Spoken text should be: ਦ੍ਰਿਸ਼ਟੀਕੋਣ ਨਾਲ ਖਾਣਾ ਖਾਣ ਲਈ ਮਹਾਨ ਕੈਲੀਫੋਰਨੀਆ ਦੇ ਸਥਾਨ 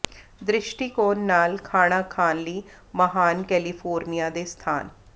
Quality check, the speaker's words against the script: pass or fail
pass